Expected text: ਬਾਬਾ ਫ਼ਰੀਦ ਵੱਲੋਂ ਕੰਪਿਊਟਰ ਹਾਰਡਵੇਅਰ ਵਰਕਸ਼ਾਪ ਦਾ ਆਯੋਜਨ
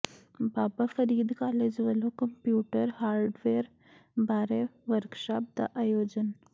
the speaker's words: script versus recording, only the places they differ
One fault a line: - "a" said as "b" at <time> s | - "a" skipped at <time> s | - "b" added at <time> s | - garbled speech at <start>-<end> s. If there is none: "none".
- "ਕਾਲਜ" added at 1.3 s
- "ਬਾਰੇ" added at 4.2 s